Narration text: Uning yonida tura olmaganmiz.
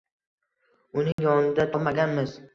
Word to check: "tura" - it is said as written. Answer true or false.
false